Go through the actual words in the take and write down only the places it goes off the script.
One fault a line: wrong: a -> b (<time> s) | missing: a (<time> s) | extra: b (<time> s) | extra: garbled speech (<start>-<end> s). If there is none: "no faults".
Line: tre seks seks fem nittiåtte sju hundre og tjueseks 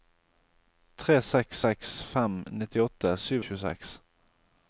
missing: hundre (3.4 s)